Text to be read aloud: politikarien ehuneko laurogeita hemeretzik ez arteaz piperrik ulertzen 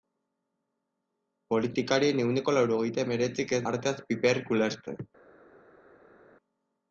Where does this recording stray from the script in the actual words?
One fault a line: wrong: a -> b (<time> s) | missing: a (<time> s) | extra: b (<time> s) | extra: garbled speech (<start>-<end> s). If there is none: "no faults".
no faults